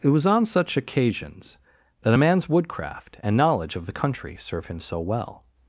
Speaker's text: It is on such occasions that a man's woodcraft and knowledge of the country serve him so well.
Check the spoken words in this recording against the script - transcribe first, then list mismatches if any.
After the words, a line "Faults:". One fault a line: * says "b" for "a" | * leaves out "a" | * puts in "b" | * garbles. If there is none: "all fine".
It was on such occasions that a man's woodcraft and knowledge of the country serve him so well.
Faults:
* says "was" for "is"